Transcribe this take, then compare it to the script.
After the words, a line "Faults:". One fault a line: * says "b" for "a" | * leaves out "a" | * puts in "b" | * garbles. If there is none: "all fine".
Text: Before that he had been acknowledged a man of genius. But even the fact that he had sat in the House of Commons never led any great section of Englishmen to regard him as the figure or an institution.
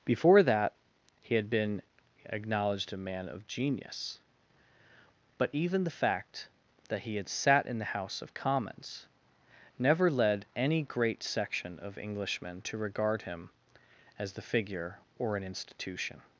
Before that he had been acknowledged a man of genius. But even the fact that he had sat in the House of Commons never led any great section of Englishmen to regard him as the figure or an institution.
Faults:
all fine